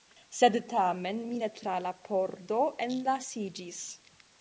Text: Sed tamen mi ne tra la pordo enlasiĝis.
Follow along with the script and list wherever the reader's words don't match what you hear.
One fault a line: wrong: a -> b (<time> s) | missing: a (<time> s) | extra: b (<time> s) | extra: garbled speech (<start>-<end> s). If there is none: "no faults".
no faults